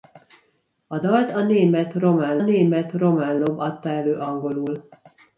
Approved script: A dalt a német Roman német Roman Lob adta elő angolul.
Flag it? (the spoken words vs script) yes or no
no